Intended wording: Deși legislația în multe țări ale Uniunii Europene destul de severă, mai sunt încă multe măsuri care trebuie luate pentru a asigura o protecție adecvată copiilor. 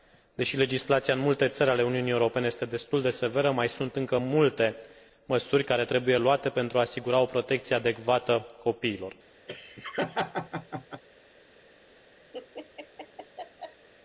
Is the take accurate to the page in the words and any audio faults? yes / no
no